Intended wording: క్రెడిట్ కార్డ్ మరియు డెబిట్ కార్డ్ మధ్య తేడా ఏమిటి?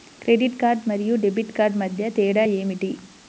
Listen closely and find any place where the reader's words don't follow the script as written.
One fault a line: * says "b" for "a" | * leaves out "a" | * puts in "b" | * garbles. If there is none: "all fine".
all fine